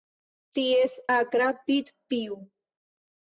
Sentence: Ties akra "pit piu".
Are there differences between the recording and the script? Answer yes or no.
no